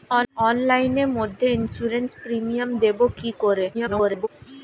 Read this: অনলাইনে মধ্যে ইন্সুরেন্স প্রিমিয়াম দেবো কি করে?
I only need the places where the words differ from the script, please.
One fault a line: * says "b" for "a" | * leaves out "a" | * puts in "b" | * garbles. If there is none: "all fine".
* garbles